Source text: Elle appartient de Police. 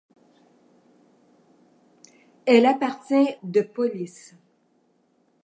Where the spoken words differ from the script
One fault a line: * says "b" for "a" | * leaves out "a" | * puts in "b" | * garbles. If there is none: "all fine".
all fine